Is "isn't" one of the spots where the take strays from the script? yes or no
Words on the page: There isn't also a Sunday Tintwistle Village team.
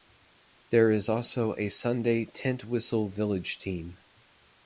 yes